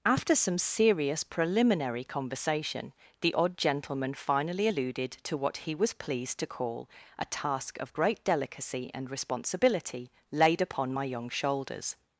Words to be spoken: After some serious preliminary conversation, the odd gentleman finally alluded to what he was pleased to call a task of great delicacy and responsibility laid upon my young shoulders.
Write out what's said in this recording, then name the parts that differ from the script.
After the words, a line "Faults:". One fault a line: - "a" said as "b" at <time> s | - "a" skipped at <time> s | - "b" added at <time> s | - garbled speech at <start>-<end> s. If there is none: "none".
After some serious preliminary conversation, the odd gentleman finally alluded to what he was pleased to call a task of great delicacy and responsibility laid upon my young shoulders.
Faults:
none